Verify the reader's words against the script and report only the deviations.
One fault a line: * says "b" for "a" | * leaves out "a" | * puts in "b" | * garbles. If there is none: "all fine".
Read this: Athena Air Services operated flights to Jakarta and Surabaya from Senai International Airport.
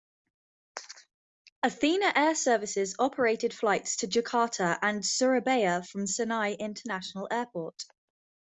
all fine